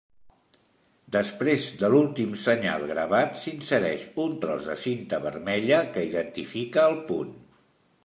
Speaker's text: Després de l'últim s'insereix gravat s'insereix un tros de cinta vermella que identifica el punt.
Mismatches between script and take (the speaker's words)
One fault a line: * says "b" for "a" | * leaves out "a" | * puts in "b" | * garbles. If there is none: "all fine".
* says "senyal" for "s'insereix"